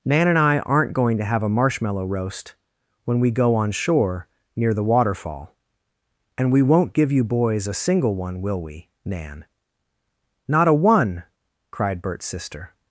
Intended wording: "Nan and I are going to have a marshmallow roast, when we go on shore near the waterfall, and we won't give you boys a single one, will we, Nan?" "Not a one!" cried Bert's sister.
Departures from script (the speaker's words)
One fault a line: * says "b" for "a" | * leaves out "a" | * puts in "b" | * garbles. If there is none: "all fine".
* says "aren't" for "are"